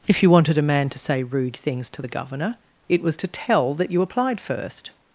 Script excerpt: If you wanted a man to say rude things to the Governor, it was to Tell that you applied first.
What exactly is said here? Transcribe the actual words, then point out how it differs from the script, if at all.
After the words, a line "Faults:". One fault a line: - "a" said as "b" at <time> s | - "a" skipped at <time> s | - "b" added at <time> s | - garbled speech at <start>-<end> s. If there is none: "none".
If you wanted a man to say rude things to the Governor, it was to Tell that you applied first.
Faults:
none